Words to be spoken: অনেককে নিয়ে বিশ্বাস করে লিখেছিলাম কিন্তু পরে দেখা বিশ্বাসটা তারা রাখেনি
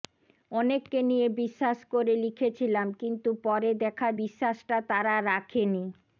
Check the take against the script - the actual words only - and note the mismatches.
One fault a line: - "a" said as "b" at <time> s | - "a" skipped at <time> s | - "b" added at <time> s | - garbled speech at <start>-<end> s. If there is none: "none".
none